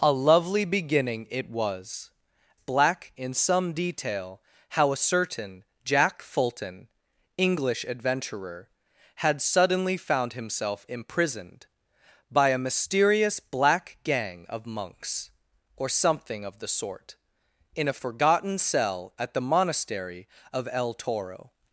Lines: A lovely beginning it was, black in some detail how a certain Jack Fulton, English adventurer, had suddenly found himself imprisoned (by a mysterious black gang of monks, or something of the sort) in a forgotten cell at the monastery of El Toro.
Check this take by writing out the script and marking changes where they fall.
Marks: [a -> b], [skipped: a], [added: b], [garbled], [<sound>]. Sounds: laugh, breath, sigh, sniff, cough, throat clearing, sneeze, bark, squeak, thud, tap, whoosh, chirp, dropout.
A lovely beginning it was, black in some detail how a certain Jack Fulton, English adventurer, had suddenly found himself imprisoned (by a mysterious black gang of monks, or something of the sort) in a forgotten cell at the monastery of El Toro.